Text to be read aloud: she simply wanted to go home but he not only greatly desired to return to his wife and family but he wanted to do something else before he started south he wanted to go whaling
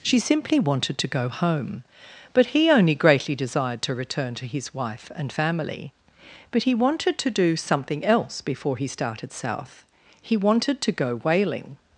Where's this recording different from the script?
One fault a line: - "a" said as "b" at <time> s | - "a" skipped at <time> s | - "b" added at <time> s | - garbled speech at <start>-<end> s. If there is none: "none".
- "not" skipped at 2.7 s